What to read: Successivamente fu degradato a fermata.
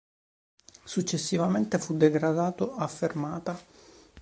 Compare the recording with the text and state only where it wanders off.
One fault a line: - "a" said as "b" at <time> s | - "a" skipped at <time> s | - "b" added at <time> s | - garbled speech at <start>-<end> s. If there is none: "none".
none